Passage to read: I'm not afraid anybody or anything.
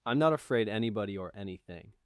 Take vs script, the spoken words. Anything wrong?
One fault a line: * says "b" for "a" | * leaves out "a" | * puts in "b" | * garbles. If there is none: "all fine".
all fine